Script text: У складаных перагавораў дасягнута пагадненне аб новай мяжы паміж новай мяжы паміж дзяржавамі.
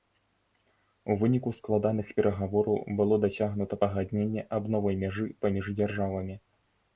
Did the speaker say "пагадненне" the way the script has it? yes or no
yes